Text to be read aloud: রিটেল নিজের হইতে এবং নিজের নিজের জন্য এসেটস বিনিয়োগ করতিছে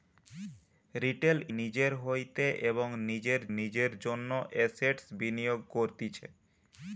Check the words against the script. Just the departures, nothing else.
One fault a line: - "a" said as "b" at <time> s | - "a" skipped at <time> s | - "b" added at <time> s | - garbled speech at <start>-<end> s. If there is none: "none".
none